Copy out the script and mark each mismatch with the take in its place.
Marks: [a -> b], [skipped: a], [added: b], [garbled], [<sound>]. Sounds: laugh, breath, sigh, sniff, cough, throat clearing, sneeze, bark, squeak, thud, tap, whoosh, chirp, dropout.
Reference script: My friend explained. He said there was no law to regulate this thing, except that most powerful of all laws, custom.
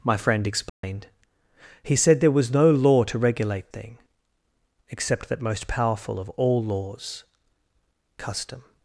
My friend explained. [dropout] He said there was no law to regulate [skipped: this] thing, except that most powerful of all laws, custom.